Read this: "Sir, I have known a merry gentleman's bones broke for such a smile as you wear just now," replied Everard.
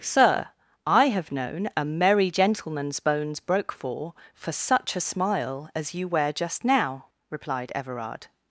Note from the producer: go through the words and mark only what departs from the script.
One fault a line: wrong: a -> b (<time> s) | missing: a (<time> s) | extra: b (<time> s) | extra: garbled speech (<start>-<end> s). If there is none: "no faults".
extra: for (4.3 s)